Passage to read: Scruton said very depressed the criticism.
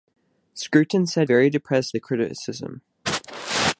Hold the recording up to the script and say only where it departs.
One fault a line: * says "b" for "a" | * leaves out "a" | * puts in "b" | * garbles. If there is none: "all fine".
all fine